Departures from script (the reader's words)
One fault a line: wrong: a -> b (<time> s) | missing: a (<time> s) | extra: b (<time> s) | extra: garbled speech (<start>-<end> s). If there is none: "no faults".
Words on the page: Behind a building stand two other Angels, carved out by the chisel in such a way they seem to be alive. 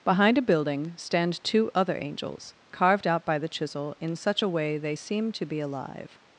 no faults